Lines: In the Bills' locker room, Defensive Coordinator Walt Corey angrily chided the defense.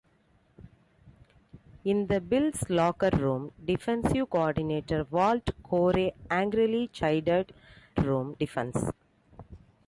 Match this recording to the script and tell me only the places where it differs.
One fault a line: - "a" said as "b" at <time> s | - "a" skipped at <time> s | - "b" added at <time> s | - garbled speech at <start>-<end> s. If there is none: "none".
- "the" said as "room" at 8.0 s